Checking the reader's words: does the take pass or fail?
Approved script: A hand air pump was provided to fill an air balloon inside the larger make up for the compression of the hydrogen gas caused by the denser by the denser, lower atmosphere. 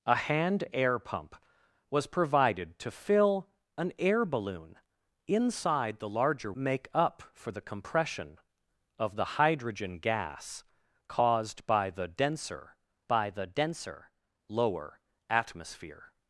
pass